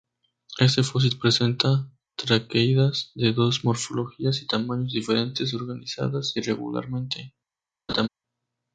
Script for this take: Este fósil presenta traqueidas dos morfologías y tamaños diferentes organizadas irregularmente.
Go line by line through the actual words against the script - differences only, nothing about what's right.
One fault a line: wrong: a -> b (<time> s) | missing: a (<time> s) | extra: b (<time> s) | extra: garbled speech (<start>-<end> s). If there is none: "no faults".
extra: de (3.1 s)